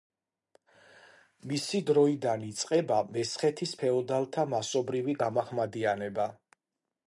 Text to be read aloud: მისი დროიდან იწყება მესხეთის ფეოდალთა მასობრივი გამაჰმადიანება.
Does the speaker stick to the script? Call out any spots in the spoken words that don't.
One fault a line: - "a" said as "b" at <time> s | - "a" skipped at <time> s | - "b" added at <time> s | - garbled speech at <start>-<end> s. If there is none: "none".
none